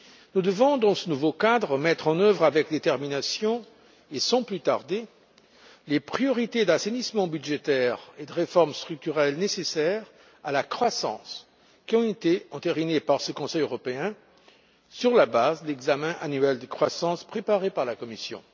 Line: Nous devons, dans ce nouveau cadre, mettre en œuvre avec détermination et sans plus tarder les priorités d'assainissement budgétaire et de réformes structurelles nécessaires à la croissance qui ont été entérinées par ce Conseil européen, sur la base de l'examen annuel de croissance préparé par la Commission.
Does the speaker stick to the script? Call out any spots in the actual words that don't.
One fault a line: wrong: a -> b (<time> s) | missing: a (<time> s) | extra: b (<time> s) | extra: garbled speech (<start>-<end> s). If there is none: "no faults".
no faults